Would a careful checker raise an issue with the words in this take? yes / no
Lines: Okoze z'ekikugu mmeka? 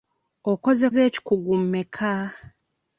no